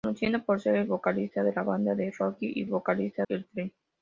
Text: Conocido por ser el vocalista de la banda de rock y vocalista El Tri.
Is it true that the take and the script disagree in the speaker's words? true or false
false